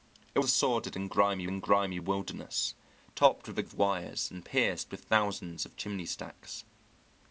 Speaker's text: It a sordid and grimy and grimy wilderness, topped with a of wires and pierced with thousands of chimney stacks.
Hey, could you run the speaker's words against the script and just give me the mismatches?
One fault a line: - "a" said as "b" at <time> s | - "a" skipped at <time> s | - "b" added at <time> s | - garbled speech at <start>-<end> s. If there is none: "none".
none